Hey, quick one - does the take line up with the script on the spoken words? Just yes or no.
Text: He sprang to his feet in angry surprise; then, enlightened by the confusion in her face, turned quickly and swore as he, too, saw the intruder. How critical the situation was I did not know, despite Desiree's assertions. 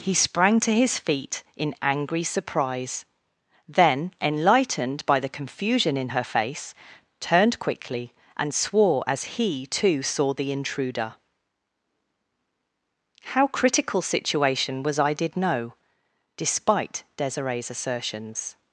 no